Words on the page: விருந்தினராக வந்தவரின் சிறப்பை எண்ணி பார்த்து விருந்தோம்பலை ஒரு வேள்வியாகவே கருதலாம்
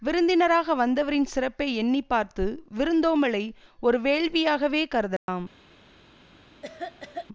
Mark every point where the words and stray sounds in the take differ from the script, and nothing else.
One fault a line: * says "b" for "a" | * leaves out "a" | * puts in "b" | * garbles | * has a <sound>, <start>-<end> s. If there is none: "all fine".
* has a dropout, 5.2-5.3 s
* has a cough, 6.6-7.3 s